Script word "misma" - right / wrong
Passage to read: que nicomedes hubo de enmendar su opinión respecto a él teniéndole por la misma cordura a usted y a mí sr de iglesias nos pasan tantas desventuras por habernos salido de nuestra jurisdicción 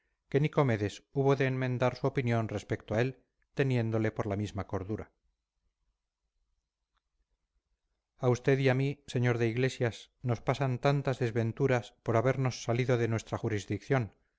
right